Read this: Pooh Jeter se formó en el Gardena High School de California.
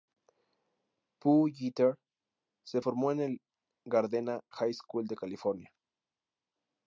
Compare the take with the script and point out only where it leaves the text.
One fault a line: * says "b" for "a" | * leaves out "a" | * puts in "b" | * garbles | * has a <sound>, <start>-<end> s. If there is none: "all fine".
all fine